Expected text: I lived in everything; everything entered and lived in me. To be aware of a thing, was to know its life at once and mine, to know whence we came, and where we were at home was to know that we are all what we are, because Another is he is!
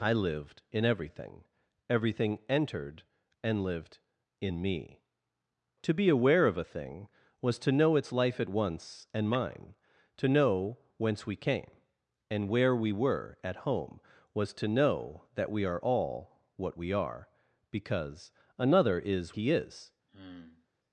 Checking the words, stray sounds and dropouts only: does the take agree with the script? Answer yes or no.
no